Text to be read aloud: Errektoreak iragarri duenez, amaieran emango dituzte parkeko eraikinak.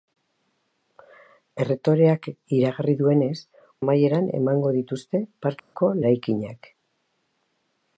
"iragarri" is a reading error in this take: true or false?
false